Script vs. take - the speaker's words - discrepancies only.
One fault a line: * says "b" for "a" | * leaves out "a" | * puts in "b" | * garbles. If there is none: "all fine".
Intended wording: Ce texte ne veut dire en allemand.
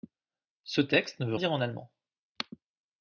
all fine